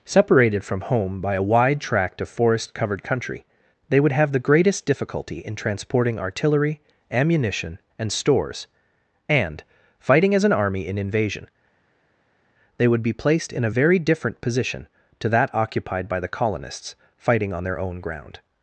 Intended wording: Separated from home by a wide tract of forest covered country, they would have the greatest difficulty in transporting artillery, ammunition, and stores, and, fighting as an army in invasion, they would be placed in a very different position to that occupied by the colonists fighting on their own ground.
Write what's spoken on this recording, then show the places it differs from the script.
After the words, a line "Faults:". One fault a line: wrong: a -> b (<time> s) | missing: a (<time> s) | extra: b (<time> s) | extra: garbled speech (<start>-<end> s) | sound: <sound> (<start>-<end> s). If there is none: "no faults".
Separated from home by a wide tract of forest covered country, they would have the greatest difficulty in transporting artillery, ammunition, and stores, and, fighting as an army in invasion, they would be placed in a very different position to that occupied by the colonists fighting on their own ground.
Faults:
no faults